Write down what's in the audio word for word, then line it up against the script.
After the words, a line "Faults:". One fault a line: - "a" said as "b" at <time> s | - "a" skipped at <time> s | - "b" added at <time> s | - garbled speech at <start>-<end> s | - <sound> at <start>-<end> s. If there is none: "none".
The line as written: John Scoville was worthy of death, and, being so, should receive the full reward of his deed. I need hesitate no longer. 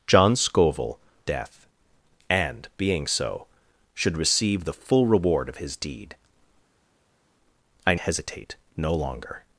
John Scoville death, and, being so, should receive the full reward of his deed. I hesitate no longer.
Faults:
- "was worthy of" skipped at 1.0 s
- "need" skipped at 7.9 s